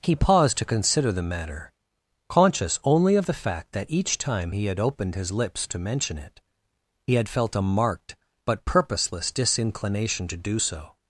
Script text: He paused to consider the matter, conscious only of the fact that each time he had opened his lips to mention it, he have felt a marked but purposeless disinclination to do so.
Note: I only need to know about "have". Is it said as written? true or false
false